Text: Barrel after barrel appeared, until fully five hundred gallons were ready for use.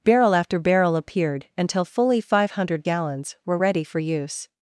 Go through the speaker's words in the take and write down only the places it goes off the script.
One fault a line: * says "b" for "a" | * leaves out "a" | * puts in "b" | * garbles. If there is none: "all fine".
all fine